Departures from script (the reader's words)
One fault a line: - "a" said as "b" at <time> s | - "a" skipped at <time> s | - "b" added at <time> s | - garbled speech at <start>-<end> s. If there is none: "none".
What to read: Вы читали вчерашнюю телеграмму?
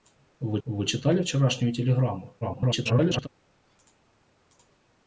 - "вы" added at 0.6 s
- garbled speech at 2.4-3.3 s